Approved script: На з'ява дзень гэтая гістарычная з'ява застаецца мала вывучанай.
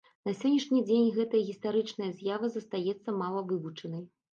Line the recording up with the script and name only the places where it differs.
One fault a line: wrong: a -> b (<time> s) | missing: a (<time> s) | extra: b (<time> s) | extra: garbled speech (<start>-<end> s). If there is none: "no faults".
wrong: з'ява -> сённяшні (0.4 s)